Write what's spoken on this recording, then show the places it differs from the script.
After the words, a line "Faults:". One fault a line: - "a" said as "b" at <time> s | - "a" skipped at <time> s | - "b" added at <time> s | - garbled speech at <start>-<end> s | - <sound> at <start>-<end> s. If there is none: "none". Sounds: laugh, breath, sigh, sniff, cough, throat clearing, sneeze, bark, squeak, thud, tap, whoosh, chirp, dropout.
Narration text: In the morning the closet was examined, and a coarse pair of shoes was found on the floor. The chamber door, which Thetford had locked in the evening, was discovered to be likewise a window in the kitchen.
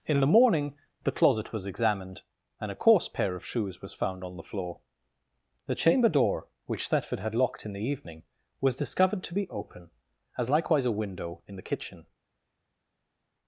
In the morning the closet was examined, and a coarse pair of shoes was found on the floor. The chamber door, which Thetford had locked in the evening, was discovered to be open, as likewise a window in the kitchen.
Faults:
- "open as" added at 9.5 s